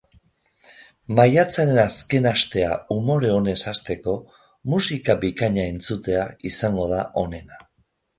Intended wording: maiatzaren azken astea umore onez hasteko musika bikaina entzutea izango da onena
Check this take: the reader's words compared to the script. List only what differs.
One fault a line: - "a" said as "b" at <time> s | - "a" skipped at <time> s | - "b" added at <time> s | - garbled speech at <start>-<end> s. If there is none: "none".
none